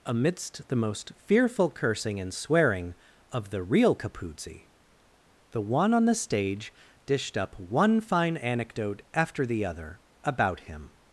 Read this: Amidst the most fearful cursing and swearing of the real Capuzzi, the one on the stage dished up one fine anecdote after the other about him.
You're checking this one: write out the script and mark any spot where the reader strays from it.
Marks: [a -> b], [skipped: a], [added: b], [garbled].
Amidst the most fearful cursing and swearing of the real Capuzzi, the one on the stage dished up one fine anecdote after the other about him.